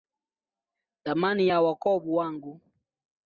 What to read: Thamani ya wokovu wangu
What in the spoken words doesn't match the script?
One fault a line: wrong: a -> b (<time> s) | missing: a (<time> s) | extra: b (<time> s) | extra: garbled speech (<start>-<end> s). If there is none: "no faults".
no faults